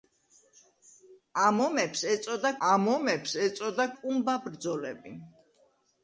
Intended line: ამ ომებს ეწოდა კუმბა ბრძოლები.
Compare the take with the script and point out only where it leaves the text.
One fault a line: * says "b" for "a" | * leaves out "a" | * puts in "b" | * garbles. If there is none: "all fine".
* puts in "ამ ომებს ეწოდა"